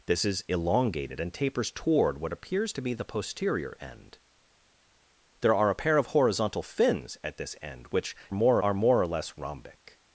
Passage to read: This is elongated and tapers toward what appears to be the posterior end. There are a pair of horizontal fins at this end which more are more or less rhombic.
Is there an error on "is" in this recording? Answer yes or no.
no